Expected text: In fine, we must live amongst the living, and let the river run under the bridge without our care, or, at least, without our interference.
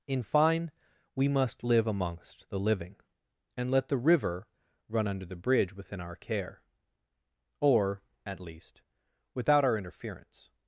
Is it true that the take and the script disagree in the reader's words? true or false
true